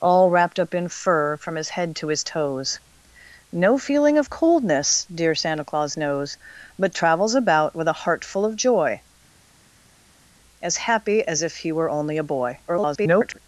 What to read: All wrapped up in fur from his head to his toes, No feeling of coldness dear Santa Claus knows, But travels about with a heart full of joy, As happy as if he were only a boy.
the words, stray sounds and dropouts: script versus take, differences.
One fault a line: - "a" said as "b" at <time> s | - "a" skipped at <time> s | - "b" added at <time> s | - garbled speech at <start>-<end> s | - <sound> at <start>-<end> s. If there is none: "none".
- garbled speech at 12.7-13.4 s